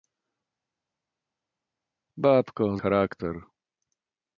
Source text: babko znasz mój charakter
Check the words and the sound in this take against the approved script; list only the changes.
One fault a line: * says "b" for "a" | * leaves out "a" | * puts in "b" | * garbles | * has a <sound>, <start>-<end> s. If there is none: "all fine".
* leaves out "znasz mój"